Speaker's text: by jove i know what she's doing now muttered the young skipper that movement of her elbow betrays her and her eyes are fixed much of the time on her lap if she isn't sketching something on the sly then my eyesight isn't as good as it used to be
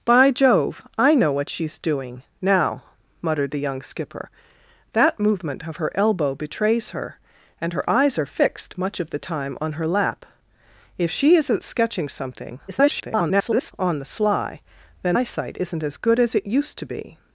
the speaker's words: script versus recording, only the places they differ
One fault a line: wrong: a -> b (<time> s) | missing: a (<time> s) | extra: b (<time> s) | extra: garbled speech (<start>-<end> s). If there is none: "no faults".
extra: garbled speech (12.7-13.7 s)
missing: my (15.2 s)